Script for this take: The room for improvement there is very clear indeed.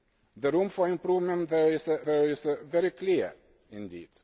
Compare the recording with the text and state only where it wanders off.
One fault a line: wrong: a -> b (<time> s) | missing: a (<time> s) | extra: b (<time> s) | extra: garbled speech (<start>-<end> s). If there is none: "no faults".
extra: there is (2.0 s)